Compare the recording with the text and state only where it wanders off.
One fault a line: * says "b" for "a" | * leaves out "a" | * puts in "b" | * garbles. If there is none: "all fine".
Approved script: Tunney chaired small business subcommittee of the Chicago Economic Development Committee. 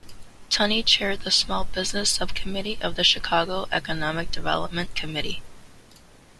* puts in "the"